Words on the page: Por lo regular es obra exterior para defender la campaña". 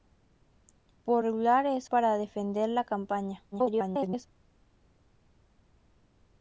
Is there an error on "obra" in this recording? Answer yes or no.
yes